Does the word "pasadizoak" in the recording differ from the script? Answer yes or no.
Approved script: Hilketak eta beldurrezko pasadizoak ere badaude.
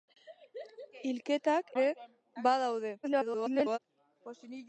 yes